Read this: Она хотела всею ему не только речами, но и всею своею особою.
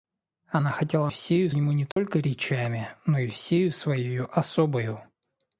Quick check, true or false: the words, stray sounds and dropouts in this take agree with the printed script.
false